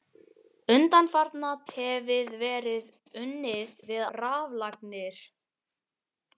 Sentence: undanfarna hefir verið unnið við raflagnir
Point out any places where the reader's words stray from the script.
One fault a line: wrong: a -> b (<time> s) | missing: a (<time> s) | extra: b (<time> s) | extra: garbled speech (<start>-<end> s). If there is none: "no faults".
no faults